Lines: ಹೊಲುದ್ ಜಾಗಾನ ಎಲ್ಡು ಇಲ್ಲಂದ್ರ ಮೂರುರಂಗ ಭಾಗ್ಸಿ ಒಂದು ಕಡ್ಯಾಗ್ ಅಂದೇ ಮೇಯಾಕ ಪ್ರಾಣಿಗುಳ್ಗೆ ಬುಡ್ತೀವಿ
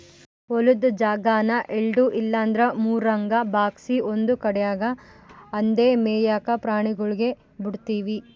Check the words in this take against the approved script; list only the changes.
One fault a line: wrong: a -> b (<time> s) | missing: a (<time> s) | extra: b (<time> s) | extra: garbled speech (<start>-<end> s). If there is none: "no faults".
no faults